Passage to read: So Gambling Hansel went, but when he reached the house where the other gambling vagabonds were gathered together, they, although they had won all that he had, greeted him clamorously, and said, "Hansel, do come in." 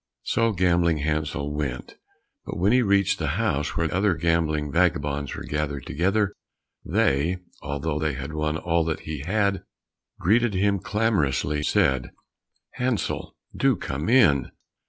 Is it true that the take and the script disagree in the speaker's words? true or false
true